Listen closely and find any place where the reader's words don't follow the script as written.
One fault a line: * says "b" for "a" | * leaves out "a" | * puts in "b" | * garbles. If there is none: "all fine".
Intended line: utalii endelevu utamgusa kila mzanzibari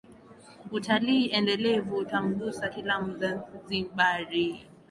all fine